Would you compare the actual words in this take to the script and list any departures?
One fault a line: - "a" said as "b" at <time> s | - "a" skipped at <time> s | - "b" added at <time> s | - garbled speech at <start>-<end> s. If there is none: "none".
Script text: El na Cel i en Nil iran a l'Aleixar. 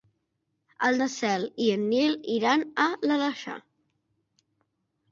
none